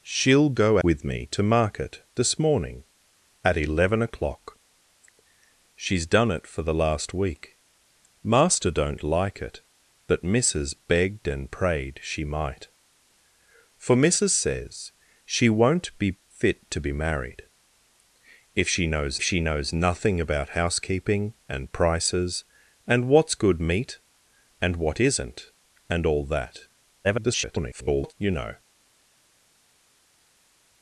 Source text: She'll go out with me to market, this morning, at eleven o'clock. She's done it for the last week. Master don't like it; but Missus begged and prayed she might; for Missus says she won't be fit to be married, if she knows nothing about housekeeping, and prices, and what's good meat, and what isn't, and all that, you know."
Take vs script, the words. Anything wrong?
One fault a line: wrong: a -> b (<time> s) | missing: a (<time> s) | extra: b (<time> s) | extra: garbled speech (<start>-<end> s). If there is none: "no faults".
missing: out (0.8 s)
extra: she knows (19.2 s)
extra: garbled speech (27.0-28.1 s)